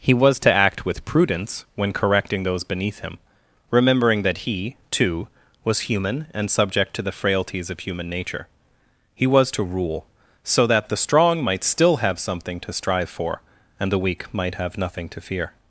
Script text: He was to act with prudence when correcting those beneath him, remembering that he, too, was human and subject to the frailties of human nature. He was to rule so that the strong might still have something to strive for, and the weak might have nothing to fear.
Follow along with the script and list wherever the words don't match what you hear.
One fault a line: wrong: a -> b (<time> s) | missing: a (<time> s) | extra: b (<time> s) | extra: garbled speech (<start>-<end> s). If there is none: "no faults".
no faults